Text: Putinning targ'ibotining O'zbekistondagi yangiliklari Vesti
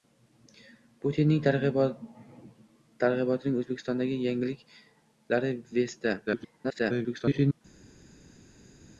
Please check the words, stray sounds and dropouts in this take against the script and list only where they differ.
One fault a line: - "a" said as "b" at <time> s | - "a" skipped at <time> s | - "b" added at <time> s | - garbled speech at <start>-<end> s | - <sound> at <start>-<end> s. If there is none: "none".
- garbled speech at 6.3-7.6 s